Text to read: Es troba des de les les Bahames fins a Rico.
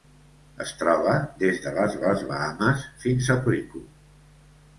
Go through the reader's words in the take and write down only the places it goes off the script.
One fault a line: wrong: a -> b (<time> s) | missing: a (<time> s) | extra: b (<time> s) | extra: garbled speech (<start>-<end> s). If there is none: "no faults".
no faults